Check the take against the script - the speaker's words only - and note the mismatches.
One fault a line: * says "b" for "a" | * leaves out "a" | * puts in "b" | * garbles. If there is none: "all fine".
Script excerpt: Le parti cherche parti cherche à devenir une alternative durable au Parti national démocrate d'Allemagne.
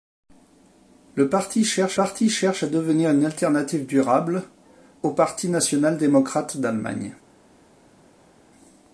all fine